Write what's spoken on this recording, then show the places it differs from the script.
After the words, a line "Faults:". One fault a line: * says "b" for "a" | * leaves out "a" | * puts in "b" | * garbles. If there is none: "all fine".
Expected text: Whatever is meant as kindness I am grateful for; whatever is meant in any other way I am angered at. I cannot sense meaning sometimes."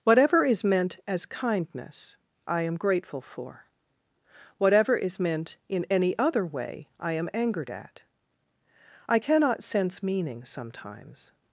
Whatever is meant as kindness I am grateful for; whatever is meant in any other way I am angered at. I cannot sense meaning sometimes."
Faults:
all fine